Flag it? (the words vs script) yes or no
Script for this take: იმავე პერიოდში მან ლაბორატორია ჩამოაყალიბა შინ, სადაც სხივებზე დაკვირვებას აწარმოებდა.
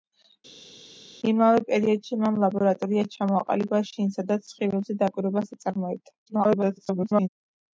yes